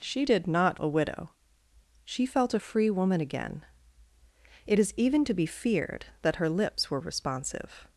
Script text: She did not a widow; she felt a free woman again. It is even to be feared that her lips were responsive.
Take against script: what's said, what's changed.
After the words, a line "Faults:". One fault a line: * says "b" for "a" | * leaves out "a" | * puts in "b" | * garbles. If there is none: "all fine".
She did not a widow; she felt a free woman again. It is even to be feared that her lips were responsive.
Faults:
all fine